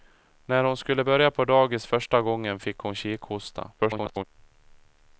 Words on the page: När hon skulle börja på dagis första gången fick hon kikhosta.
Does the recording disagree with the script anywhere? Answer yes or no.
yes